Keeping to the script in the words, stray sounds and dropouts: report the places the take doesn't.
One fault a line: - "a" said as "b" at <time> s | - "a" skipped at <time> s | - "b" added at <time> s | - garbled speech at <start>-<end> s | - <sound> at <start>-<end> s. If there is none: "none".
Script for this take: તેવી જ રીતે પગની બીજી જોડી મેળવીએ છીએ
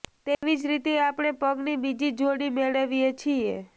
- dropout at 0.3-0.4 s
- "આપણે" added at 1.0 s